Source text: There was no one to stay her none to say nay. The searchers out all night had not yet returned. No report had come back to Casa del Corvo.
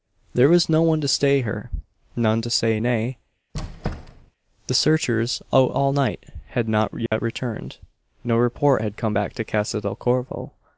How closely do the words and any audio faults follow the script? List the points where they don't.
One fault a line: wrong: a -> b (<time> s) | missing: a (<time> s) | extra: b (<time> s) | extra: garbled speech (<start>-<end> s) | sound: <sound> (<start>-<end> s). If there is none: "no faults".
sound: squeak (3.5-4.3 s)
sound: dropout (7.1-7.1 s)